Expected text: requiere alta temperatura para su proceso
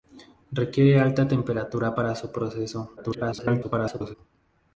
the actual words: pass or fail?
fail